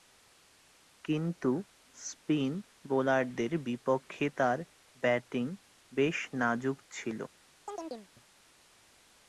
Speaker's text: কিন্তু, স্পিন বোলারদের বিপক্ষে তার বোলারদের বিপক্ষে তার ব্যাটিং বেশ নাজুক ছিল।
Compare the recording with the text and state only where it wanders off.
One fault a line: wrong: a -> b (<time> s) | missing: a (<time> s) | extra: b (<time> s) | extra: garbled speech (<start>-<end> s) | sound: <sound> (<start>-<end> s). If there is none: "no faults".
missing: বোলারদের বিপক্ষে তার (4.6 s)
sound: chirp (7.7-8.1 s)